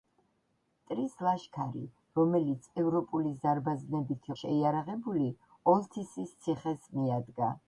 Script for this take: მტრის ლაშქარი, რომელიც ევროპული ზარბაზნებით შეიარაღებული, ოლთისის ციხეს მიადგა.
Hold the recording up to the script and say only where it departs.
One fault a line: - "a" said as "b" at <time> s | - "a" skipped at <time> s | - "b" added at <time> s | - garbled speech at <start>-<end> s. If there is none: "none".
none